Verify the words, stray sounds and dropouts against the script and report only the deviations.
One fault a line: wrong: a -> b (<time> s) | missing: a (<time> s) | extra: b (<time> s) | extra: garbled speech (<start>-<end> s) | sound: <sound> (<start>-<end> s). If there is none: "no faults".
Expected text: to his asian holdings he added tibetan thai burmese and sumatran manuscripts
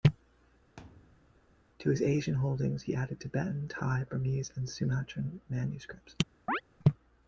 sound: thud (0.8-1.6 s)
sound: chirp (6.5-6.6 s)